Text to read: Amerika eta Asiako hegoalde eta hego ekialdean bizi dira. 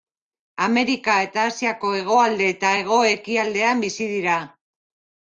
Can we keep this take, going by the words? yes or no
yes